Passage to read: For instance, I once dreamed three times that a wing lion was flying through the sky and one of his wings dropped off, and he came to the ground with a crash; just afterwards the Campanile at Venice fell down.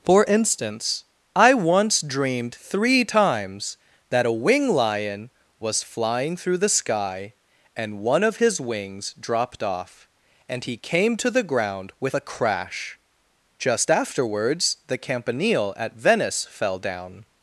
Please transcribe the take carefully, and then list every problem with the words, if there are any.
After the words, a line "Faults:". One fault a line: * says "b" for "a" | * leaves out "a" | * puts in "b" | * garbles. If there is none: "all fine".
For instance, I once dreamed three times that a wing lion was flying through the sky and one of his wings dropped off, and he came to the ground with a crash; just afterwards the Campanile at Venice fell down.
Faults:
all fine